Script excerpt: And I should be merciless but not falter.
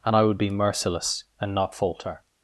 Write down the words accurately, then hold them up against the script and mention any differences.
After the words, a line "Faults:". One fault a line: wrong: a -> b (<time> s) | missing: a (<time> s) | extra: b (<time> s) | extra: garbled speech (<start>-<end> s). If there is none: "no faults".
And I would be merciless and not falter.
Faults:
wrong: should -> would (0.2 s)
wrong: but -> and (1.4 s)